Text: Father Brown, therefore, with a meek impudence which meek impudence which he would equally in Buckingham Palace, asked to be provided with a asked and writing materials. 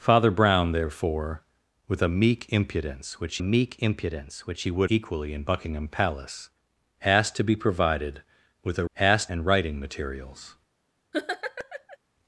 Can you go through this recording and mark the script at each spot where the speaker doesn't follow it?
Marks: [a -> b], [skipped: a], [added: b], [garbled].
Father Brown, therefore, with a meek impudence which meek impudence which he would equally in Buckingham Palace, asked to be provided with a asked and writing materials.